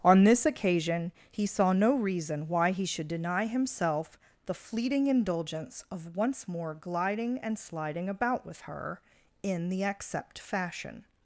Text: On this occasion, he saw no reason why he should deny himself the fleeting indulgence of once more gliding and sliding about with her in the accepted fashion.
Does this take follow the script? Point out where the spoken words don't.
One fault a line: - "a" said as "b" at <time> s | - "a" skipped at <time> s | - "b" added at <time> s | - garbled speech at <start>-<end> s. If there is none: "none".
- "accepted" said as "accept" at 9.8 s